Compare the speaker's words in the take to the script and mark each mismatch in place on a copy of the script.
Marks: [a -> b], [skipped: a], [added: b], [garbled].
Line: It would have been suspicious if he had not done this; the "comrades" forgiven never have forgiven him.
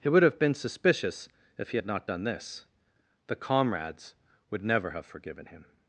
It would have been suspicious if he had not done this; the "comrades" [forgiven -> would] never have forgiven him.